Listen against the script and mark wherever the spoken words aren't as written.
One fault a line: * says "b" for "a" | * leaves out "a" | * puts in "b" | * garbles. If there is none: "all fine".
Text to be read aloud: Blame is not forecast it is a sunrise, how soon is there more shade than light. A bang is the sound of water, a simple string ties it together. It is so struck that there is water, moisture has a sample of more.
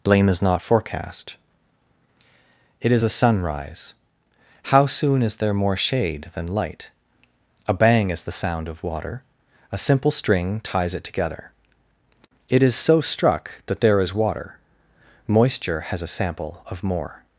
all fine